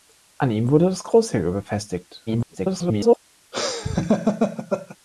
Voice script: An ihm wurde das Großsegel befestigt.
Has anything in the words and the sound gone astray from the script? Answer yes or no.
yes